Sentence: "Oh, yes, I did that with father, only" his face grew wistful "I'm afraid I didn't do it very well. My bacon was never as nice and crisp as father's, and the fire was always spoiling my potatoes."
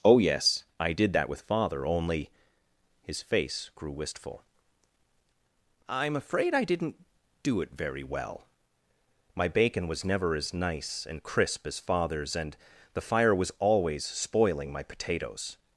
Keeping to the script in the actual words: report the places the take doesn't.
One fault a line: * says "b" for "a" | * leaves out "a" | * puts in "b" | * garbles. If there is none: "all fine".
all fine